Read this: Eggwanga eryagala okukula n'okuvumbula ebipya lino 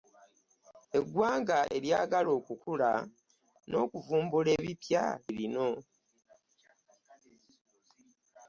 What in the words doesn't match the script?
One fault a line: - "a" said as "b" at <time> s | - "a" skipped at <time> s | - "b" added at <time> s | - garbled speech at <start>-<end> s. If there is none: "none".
none